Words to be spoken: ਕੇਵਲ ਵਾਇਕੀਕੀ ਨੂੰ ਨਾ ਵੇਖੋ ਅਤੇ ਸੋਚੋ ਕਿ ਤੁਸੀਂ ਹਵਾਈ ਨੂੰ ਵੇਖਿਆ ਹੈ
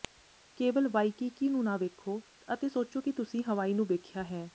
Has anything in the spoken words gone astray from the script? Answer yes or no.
no